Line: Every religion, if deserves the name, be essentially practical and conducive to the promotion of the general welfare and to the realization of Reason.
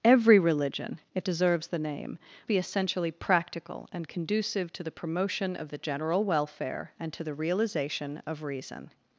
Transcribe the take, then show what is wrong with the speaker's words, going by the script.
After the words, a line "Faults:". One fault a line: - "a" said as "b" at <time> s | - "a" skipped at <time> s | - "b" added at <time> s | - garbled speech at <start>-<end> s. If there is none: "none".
Every religion, if deserves the name, be essentially practical and conducive to the promotion of the general welfare and to the realization of Reason.
Faults:
none